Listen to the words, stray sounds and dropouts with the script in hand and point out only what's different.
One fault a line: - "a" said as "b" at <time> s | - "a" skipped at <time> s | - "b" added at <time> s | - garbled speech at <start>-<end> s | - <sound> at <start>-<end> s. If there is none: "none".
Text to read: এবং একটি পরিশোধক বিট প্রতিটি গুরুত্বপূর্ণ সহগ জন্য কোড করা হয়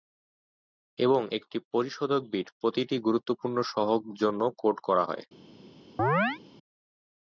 - chirp at 6.0-6.4 s